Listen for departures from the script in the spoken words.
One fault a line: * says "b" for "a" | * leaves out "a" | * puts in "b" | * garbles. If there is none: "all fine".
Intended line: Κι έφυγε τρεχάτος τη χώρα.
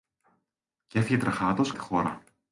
all fine